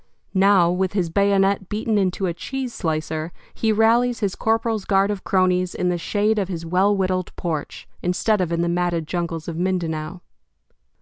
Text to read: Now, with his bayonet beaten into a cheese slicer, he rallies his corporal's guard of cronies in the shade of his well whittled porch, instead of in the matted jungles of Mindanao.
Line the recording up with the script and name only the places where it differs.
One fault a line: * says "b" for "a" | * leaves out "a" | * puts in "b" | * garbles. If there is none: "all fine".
all fine